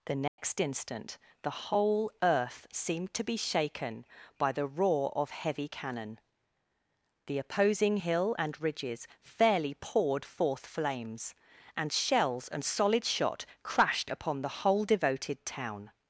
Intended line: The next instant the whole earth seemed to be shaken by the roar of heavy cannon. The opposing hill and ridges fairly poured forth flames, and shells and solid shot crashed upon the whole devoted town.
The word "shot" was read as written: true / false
true